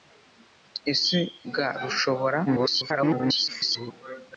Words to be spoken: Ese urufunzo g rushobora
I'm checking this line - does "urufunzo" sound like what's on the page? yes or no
no